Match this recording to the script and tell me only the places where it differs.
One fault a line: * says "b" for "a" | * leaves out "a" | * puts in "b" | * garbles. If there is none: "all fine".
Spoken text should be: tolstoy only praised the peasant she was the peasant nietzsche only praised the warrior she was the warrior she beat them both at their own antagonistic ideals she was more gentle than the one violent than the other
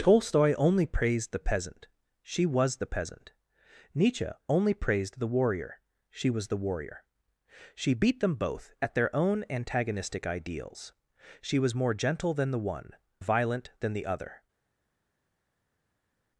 all fine